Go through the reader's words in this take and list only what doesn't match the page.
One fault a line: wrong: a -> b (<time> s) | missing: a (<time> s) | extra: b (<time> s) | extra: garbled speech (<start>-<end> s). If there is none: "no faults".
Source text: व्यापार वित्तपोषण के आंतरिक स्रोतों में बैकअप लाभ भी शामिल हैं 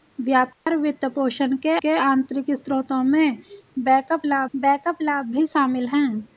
extra: के (1.8 s)
extra: बैकअप लाभ (4.6 s)